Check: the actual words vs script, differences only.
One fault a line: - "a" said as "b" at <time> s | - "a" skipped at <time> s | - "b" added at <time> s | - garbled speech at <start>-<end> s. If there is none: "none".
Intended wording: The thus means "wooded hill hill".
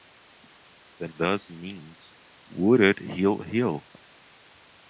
none